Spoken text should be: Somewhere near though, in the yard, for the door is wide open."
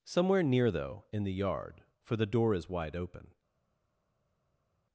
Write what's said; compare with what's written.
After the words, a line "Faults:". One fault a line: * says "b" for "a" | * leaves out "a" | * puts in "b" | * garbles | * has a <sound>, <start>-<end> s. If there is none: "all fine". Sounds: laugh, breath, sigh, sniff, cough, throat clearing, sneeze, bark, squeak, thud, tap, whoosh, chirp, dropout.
Somewhere near though, in the yard, for the door is wide open."
Faults:
all fine